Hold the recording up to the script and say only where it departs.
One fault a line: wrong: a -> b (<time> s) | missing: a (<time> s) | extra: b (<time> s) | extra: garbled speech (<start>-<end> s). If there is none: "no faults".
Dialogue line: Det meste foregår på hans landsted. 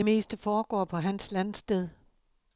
no faults